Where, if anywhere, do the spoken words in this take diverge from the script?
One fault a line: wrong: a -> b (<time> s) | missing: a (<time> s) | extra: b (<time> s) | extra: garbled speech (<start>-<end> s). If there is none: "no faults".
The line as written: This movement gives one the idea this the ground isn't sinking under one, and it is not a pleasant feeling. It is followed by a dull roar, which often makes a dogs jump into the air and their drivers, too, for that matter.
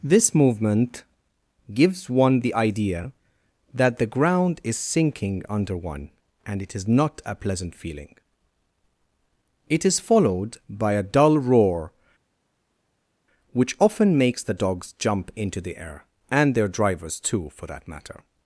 wrong: this -> that (3.7 s)
wrong: isn't -> is (4.6 s)
wrong: a -> the (14.4 s)